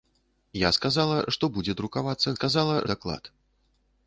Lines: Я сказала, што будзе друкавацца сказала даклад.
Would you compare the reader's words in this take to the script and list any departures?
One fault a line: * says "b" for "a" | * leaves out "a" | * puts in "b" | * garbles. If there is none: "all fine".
all fine